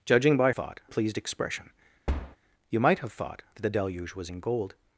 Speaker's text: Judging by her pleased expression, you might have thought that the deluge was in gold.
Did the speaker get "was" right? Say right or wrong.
right